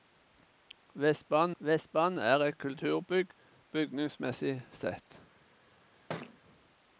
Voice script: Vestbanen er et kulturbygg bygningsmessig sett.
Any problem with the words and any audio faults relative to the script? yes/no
yes